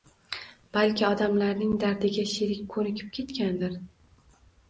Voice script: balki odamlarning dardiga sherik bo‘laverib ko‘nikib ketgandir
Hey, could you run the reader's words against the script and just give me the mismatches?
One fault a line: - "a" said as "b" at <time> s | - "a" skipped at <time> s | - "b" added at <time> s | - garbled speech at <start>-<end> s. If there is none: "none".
- "bo‘laverib" skipped at 2.6 s